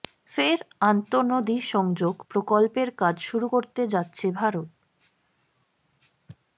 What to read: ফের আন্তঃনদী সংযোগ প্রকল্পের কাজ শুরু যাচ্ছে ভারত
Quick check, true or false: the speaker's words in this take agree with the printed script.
false